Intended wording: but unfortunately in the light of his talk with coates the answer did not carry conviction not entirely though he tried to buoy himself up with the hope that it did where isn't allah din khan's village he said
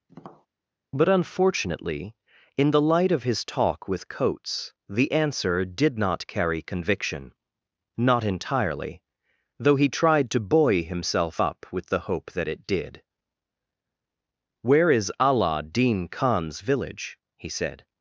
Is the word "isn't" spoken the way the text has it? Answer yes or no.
no